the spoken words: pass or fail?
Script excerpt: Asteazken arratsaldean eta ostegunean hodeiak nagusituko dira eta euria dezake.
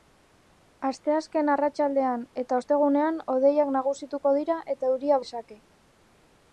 pass